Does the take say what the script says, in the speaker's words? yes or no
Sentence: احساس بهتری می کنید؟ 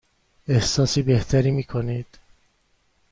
yes